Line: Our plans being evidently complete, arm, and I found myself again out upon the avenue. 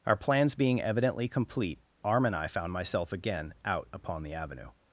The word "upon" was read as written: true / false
true